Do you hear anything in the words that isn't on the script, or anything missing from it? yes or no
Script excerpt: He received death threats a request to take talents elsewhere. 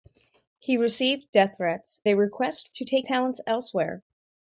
no